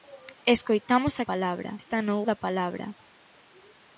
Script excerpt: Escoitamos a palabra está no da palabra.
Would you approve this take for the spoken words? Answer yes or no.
yes